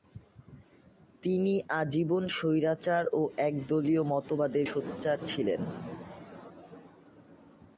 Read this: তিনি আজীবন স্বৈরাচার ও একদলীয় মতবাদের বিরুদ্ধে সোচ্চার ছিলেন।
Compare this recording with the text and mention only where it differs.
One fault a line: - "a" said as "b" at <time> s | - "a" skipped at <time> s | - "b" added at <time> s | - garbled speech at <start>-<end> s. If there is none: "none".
- "বিরুদ্ধে" skipped at 4.7 s